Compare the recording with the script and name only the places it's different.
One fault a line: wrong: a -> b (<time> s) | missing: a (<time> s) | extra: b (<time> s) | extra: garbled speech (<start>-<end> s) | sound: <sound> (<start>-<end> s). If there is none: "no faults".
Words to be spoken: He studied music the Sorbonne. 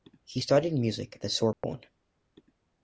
sound: dropout (1.5-1.6 s)